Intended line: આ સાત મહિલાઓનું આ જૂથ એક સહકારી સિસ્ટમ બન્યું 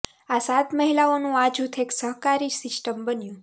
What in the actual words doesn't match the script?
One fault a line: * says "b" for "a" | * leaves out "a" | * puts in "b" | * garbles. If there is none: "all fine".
all fine